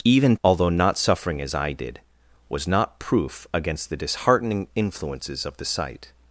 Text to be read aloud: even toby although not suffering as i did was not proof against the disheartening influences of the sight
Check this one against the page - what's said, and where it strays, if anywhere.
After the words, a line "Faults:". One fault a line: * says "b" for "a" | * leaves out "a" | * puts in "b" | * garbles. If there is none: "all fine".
even although not suffering as i did was not proof against the disheartening influences of the sight
Faults:
* leaves out "toby"